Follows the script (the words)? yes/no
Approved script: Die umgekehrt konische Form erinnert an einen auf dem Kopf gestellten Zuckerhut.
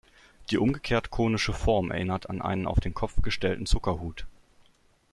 no